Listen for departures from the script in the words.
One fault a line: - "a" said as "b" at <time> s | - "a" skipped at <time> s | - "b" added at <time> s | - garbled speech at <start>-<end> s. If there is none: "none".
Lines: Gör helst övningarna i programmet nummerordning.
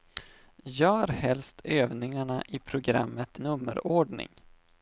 none